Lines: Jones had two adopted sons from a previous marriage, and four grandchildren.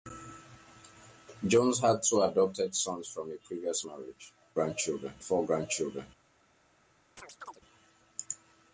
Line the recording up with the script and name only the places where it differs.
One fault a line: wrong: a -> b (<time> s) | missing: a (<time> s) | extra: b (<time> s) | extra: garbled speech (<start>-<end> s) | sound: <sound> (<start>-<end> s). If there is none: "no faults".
wrong: and -> grandchildren (4.5 s)
sound: chirp (7.2-7.6 s)